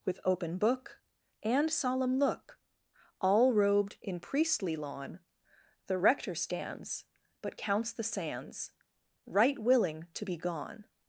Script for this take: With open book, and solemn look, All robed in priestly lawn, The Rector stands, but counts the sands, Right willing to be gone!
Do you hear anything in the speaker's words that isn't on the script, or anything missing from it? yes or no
no